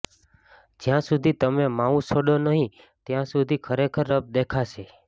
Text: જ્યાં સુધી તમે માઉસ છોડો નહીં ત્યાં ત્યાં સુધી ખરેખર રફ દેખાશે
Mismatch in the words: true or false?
true